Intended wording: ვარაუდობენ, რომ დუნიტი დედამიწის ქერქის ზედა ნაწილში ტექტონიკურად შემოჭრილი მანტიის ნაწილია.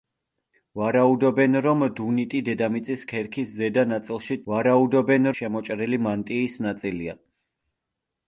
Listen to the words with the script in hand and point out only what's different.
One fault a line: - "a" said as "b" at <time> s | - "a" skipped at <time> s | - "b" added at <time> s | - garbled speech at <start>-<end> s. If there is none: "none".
- "ტექტონიკურად" said as "ვარაუდობენ" at 4.5 s